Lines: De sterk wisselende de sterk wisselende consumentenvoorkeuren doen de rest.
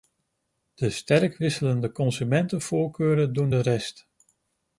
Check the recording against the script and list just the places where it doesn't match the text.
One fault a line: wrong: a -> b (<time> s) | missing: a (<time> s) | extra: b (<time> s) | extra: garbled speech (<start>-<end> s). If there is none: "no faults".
missing: de sterk wisselende (1.9 s)